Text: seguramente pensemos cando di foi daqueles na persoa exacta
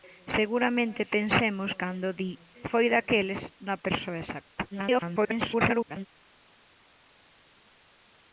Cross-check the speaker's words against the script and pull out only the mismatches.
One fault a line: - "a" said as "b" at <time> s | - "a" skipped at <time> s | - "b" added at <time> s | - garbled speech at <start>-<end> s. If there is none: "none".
- garbled speech at 4.7-6.1 s